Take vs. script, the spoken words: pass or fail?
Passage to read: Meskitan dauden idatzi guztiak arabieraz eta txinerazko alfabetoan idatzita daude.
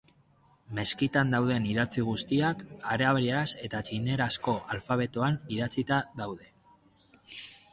pass